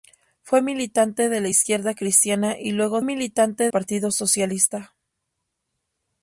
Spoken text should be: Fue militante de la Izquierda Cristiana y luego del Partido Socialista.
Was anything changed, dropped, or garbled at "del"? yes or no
yes